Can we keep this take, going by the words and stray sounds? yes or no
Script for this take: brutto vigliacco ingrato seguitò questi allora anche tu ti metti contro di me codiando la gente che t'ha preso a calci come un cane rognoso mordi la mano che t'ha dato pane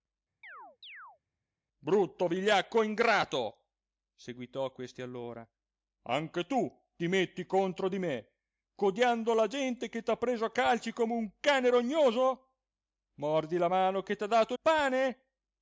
no